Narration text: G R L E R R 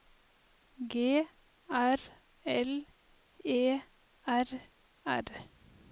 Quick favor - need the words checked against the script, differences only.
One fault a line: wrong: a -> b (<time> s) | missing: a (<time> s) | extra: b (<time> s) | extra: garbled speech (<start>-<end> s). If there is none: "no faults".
no faults